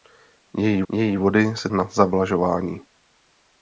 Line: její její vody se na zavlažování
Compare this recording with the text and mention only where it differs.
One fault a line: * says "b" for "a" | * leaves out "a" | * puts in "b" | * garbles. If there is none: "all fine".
all fine